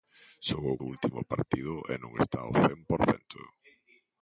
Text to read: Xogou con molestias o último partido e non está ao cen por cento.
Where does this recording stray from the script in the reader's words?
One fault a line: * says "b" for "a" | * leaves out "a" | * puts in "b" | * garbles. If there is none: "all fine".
* leaves out "con molestias"